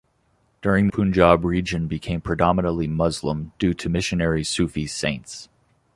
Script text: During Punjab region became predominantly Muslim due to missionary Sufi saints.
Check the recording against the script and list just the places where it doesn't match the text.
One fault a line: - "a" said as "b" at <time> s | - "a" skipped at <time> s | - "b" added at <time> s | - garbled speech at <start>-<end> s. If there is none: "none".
none